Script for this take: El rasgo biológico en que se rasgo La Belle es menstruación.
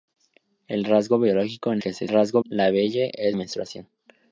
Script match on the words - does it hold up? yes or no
yes